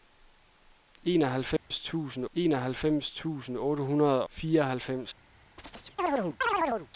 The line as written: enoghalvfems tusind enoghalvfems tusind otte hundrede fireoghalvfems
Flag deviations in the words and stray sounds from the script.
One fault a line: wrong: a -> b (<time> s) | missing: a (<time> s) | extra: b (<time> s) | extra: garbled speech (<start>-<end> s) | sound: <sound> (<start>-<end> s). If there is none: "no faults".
sound: dropout (1.6-1.7 s)
sound: chirp (5.6-6.9 s)